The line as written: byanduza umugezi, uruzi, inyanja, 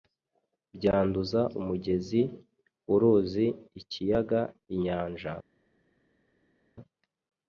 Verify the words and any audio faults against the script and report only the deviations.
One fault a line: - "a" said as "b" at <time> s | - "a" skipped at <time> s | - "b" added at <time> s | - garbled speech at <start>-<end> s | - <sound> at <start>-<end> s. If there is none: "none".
- "ikiyaga" added at 3.8 s